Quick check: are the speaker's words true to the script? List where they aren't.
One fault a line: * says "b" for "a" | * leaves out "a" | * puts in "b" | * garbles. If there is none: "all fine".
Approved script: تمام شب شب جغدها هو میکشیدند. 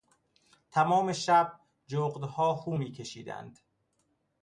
* leaves out "شب"